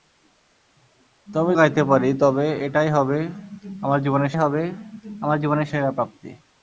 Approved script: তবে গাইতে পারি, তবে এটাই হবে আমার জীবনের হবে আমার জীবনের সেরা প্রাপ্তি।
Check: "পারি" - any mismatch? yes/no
no